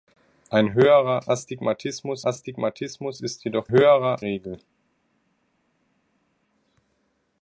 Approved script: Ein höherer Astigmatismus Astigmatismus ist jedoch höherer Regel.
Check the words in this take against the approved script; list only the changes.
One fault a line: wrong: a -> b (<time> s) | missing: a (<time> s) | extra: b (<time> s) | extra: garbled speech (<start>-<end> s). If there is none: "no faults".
no faults